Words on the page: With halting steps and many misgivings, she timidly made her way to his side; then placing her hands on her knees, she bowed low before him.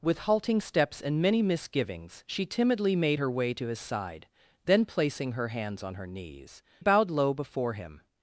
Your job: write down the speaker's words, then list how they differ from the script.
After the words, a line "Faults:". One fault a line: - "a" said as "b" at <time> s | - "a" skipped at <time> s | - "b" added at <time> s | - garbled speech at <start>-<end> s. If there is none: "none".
With halting steps and many misgivings, she timidly made her way to his side; then placing her hands on her knees, bowed low before him.
Faults:
- "she" skipped at 6.6 s